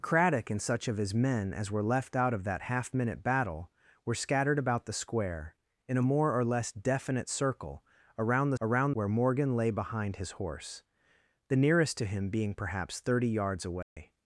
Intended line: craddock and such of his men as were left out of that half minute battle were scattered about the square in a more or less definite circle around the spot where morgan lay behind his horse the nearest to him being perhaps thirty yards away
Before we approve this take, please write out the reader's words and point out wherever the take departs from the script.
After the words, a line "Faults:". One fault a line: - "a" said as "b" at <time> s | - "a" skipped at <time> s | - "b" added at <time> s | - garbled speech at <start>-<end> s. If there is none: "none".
craddock and such of his men as were left out of that half minute battle were scattered about the square in a more or less definite circle around the around where morgan lay behind his horse the nearest to him being perhaps thirty yards away
Faults:
- "spot" said as "around" at 8.6 s